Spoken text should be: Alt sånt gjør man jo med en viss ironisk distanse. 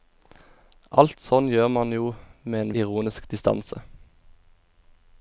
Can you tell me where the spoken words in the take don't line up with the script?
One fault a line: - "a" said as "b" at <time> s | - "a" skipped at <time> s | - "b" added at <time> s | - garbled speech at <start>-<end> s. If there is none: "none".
- "viss" skipped at 2.7 s